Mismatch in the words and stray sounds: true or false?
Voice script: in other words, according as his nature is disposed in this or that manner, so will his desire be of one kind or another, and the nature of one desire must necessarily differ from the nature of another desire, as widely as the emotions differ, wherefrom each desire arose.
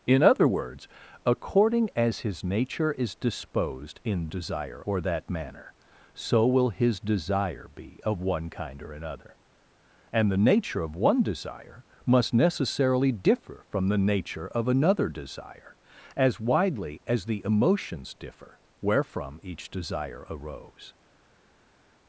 true